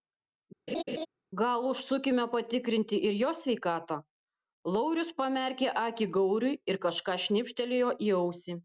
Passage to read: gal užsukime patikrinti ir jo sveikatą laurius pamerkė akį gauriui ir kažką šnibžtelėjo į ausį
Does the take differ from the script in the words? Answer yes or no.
no